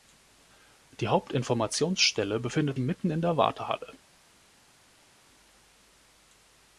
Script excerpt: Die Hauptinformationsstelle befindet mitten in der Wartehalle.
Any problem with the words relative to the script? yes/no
no